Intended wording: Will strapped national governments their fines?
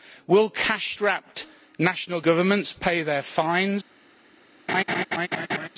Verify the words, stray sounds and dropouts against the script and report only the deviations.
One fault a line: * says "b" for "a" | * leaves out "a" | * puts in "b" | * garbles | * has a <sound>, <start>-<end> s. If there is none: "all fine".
* puts in "cash"
* puts in "pay"
* has a laugh, 4.7-5.7 s